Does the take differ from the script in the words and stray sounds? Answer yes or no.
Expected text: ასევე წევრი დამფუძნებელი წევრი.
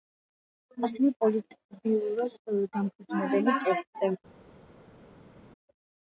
yes